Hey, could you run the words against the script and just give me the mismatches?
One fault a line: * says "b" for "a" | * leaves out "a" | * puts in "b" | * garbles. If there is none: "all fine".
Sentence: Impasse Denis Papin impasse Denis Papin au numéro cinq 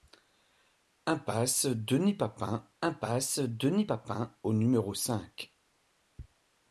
all fine